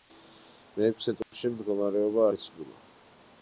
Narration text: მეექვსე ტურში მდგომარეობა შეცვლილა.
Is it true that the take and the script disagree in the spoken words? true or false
false